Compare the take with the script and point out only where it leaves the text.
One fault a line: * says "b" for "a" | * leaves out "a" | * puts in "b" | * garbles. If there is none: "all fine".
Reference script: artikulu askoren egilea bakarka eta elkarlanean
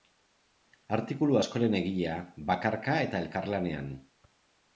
all fine